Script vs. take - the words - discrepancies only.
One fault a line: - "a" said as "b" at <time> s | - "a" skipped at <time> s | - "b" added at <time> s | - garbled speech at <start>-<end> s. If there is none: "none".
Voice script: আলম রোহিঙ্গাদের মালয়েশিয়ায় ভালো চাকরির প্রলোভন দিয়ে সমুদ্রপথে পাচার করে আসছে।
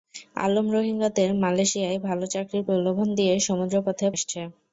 - "পাচার করে" skipped at 4.1 s